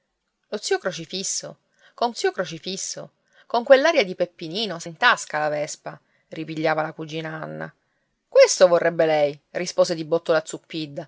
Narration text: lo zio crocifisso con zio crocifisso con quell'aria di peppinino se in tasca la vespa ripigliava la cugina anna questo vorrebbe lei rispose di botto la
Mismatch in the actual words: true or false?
false